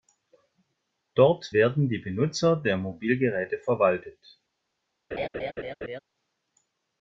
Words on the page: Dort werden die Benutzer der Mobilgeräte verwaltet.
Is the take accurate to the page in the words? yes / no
yes